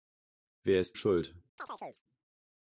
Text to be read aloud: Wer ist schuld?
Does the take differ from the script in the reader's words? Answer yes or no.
no